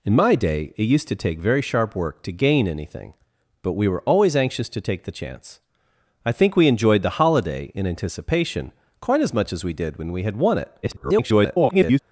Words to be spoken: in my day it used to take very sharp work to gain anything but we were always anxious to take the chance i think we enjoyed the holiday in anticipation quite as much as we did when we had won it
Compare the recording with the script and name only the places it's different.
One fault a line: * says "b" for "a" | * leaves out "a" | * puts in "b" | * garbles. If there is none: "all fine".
* garbles